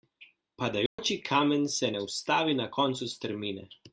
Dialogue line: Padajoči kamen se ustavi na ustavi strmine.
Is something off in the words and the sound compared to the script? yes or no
yes